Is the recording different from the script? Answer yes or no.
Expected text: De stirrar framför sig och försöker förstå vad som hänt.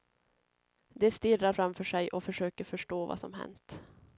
no